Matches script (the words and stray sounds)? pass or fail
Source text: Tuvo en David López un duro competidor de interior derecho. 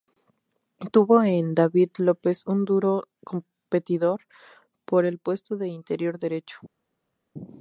fail